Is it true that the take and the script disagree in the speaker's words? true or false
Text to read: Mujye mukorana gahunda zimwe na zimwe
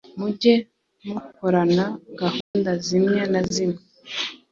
false